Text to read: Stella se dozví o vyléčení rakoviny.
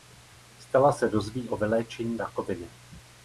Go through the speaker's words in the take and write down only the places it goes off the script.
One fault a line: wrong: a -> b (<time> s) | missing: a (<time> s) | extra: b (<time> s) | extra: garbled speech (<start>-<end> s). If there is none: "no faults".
no faults